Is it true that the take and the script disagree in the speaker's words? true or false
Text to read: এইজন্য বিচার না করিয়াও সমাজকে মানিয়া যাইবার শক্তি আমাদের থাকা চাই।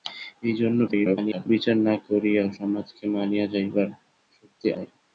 true